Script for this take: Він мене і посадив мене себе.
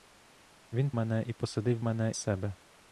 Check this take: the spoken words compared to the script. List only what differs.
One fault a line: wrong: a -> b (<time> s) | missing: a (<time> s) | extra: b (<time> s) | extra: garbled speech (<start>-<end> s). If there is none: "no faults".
no faults